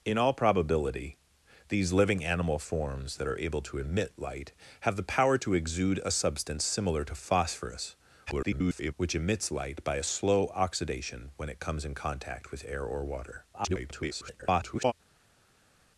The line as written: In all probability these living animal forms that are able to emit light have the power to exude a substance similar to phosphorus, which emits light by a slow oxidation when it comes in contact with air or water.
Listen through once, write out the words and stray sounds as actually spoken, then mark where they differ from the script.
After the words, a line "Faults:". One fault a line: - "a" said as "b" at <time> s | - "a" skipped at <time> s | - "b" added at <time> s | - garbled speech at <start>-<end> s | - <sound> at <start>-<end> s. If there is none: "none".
In all probability these living animal forms that are able to emit light have the power to exude a substance similar to phosphorus, [garbled] which emits light by a slow oxidation when it comes in contact with air or water. [garbled]
Faults:
- garbled speech at 8.3-8.9 s
- garbled speech at 13.5-14.9 s